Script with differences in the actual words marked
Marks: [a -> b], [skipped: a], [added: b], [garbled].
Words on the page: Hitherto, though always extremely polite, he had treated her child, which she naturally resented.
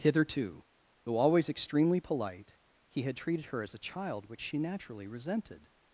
Hitherto, though always extremely polite, he had treated her [added: as a] child, which she naturally resented.